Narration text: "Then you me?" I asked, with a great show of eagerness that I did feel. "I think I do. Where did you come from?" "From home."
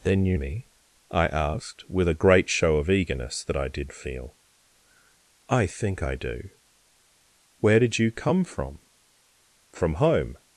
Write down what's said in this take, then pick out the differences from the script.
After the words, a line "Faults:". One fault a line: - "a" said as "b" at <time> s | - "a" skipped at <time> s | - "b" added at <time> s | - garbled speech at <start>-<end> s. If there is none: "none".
"Then you me?" I asked, with a great show of eagerness that I did feel. "I think I do. Where did you come from?" "From home."
Faults:
none